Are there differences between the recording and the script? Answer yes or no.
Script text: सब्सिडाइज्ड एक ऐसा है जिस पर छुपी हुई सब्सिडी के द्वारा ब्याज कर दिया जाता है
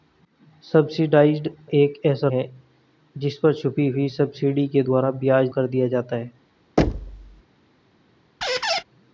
no